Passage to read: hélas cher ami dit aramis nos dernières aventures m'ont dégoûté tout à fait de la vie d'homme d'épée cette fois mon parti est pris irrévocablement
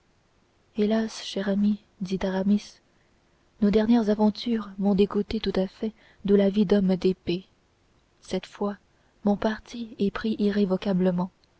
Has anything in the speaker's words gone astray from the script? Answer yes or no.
no